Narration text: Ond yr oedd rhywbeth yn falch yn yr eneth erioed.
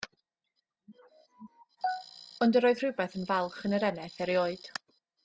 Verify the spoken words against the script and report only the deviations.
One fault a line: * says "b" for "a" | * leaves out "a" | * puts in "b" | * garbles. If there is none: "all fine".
all fine